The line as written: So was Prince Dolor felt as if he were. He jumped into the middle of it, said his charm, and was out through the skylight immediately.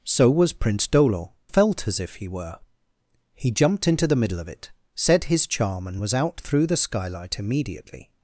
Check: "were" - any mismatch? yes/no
no